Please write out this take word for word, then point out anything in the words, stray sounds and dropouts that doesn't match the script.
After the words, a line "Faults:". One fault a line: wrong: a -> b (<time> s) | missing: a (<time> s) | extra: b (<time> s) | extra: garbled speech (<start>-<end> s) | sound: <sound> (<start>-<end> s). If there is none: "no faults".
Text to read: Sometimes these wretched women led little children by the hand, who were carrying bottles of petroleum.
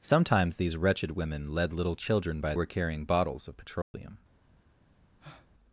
Sometimes these wretched women led little children by were carrying bottles of petroleum.
Faults:
missing: the hand who (2.5 s)
sound: dropout (3.8-3.9 s)
sound: breath (5.2-5.5 s)